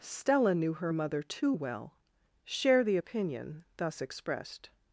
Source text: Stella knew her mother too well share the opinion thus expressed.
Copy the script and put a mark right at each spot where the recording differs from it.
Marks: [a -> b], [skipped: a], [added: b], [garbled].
Stella knew her mother too well share the opinion thus expressed.